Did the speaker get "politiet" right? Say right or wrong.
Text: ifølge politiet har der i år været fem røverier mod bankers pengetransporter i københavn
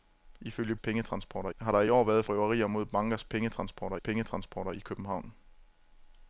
wrong